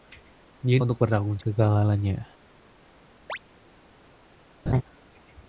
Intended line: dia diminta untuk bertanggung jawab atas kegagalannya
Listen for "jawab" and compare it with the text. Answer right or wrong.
wrong